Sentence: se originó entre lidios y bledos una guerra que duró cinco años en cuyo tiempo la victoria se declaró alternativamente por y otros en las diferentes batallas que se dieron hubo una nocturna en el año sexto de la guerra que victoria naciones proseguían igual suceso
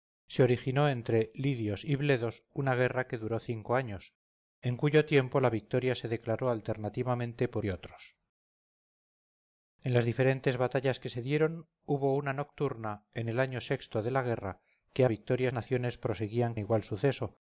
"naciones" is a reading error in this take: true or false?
false